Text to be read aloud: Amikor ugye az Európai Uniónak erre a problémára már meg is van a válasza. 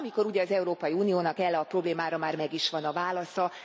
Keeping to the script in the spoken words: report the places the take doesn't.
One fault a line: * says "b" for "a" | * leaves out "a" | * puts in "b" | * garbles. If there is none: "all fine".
all fine